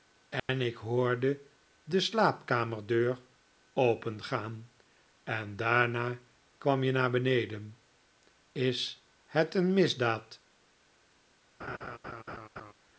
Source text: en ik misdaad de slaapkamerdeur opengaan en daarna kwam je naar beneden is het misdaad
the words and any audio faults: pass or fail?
fail